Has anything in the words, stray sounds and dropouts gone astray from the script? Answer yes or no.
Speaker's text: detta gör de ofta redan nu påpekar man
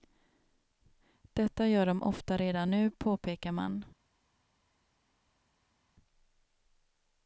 no